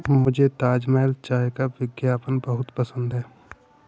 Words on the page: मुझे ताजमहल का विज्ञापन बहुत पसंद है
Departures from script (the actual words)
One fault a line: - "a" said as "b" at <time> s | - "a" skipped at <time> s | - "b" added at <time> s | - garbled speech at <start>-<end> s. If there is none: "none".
- "चाय" added at 1.2 s